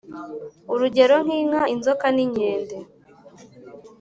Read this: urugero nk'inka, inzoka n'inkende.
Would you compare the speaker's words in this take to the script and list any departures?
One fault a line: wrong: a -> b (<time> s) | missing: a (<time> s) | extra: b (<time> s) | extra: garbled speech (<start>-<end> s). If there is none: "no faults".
no faults